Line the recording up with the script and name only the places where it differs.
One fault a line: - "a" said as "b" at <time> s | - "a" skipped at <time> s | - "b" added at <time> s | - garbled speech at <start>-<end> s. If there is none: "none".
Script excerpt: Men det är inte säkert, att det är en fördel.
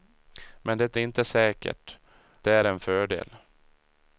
- "är" skipped at 1.0 s
- "att det" skipped at 2.0 s